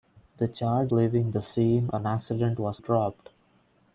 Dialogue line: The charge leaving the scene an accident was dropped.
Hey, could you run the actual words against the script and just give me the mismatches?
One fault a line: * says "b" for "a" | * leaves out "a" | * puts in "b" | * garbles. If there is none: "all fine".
all fine